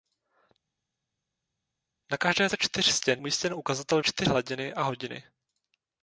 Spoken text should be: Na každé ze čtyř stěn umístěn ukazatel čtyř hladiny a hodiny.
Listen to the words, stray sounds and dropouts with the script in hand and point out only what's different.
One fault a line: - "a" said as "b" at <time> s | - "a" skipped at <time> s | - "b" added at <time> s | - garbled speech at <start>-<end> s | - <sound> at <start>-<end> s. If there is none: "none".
none